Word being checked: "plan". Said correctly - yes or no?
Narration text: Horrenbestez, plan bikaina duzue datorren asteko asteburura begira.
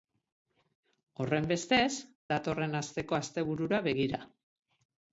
no